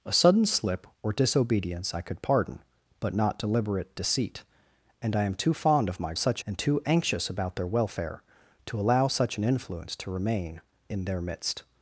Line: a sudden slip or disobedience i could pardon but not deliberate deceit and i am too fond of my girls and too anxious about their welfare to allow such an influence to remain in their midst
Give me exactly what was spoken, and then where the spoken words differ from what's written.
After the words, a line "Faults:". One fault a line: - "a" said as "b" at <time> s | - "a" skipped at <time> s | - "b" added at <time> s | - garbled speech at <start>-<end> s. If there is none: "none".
a sudden slip or disobedience i could pardon but not deliberate deceit and i am too fond of my such and too anxious about their welfare to allow such an influence to remain in their midst
Faults:
- "girls" said as "such" at 6.1 s